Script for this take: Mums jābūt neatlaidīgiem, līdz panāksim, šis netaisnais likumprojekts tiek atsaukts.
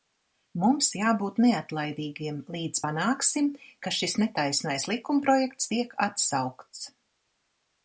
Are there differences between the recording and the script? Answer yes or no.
yes